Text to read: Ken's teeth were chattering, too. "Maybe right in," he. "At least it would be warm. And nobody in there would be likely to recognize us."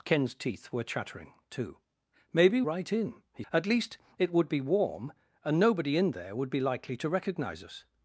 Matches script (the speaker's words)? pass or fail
pass